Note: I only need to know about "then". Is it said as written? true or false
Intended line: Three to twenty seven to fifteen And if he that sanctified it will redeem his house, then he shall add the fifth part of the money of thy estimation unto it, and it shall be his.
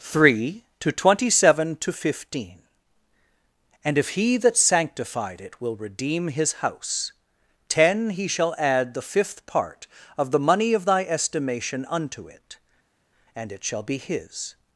false